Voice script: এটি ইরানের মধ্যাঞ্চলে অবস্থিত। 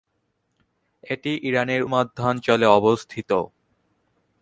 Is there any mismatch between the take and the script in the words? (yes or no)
no